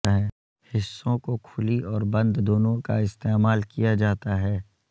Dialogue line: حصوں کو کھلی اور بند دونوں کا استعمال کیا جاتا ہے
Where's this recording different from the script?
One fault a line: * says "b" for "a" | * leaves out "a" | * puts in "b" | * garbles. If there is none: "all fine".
all fine